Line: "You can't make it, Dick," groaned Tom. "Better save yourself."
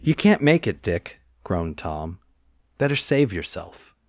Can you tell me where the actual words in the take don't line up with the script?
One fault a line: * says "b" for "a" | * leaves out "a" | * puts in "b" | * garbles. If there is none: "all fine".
all fine